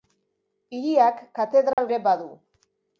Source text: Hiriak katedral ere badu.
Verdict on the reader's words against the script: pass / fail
pass